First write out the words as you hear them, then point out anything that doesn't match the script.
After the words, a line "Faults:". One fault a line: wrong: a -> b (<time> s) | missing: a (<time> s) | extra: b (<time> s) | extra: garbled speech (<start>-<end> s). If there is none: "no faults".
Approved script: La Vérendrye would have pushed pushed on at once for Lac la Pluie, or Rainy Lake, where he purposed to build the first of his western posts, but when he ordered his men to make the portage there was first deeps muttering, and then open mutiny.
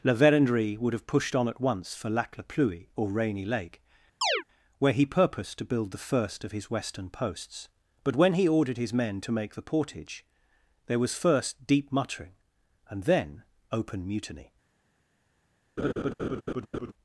La Vérendrye would have pushed on at once for Lac la Pluie, or Rainy Lake, where he purposed to build the first of his western posts, but when he ordered his men to make the portage there was first deep muttering, and then open mutiny.
Faults:
missing: pushed (1.4 s)
wrong: deeps -> deep (11.7 s)